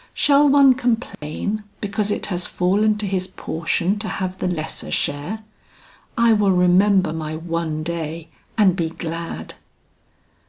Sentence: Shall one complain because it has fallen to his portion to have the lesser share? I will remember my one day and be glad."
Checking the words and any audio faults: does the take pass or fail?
fail